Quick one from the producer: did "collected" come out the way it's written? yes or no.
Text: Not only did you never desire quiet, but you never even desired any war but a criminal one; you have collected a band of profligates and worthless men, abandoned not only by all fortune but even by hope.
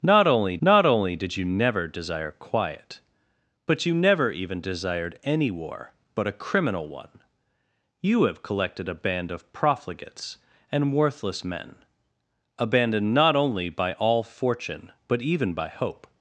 yes